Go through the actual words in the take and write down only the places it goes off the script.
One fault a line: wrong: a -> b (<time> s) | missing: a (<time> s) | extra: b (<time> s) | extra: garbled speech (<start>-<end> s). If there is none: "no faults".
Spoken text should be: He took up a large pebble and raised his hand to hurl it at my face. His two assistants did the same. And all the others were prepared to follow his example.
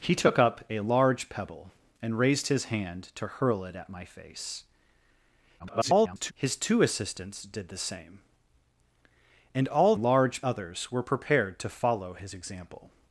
extra: garbled speech (5.6-6.3 s)
wrong: the -> large (9.9 s)